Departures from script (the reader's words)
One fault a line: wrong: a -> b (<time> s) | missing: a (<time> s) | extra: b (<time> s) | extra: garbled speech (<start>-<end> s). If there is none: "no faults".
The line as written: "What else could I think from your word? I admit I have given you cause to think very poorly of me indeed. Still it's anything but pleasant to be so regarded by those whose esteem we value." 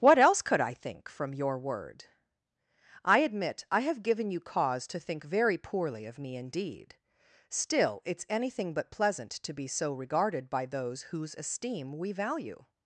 no faults